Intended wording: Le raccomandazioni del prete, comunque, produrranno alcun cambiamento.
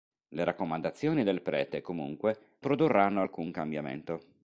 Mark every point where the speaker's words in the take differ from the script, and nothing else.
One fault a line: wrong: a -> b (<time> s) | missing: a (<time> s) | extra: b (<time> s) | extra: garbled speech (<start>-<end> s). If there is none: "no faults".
no faults